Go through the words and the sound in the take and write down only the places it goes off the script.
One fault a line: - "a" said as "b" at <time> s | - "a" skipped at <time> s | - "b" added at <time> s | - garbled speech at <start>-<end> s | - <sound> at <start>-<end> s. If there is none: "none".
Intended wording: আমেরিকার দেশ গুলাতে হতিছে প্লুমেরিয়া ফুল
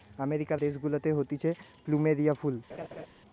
- laugh at 2.7-3.1 s